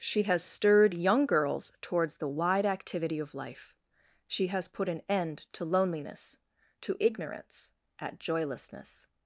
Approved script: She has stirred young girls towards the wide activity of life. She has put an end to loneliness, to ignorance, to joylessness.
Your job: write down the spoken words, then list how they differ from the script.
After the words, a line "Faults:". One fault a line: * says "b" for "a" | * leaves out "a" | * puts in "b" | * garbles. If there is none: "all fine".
She has stirred young girls towards the wide activity of life. She has put an end to loneliness, to ignorance, at joylessness.
Faults:
* says "at" for "to"